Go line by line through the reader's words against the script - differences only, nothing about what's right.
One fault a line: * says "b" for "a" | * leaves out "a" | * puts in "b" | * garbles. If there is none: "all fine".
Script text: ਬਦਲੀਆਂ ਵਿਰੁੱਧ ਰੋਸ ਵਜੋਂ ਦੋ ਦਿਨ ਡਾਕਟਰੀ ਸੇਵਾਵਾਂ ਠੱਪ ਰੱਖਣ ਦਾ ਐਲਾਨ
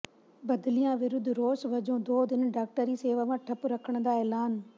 all fine